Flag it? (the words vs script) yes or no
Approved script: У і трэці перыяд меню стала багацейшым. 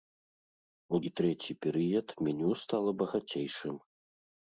no